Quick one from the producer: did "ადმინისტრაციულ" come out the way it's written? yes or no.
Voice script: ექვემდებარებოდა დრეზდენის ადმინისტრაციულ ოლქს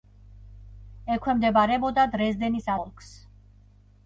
no